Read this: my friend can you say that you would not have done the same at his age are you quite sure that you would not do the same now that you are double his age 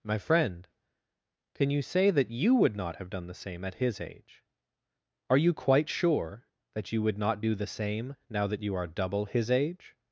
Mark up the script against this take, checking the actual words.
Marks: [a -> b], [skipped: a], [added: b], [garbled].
my friend can you say that you would not have done the same at his age are you quite sure that you would not do the same now that you are double his age